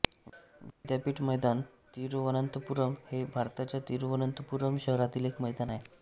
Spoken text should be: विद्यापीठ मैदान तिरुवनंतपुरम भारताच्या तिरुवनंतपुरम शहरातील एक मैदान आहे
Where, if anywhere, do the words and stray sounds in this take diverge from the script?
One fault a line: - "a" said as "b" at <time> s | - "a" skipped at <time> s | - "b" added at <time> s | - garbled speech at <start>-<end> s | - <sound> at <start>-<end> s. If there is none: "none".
- dropout at 0.7-0.8 s
- "हे" added at 3.1 s